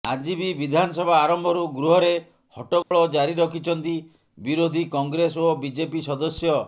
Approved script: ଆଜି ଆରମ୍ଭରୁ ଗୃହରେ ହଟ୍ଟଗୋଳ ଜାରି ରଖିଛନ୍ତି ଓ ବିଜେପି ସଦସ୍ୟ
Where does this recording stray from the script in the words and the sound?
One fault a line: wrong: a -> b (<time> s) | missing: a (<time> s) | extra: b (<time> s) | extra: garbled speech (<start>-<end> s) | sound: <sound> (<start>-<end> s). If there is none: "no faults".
extra: ବି ବିଧାନସଭା (0.3 s)
sound: dropout (2.8-2.9 s)
extra: ବିରୋଧୀ କଂଗ୍ରେସ (4.4 s)